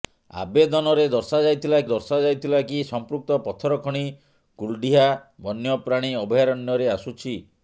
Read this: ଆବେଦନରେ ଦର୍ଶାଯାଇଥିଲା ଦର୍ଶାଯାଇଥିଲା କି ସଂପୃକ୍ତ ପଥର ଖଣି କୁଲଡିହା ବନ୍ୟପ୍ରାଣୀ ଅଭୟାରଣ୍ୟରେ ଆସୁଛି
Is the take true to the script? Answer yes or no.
yes